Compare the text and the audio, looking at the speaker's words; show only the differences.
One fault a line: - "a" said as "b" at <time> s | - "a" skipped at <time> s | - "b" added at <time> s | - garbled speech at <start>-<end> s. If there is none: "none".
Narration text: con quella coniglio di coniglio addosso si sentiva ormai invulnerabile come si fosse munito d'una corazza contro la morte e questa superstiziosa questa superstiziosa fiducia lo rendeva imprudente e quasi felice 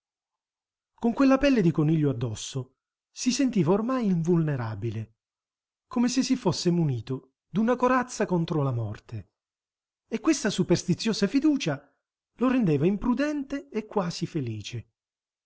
- "coniglio" said as "pelle" at 1.4 s
- "se" added at 6.1 s
- "questa superstiziosa" skipped at 11.3 s